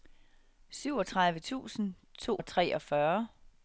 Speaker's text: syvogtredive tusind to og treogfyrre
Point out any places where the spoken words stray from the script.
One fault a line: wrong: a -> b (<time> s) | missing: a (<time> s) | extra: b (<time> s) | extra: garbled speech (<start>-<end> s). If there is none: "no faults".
no faults